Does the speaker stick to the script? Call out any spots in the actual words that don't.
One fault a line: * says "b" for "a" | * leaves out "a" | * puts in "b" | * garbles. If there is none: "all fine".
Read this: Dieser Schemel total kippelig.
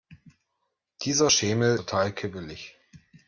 all fine